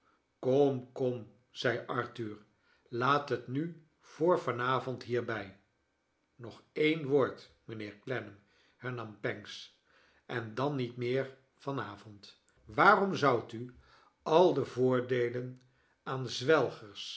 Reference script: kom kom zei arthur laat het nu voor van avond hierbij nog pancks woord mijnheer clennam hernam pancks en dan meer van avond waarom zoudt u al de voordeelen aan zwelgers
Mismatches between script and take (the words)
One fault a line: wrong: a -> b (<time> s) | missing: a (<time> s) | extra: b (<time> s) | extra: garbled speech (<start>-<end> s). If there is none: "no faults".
wrong: pancks -> een (6.7 s)
extra: niet (10.7 s)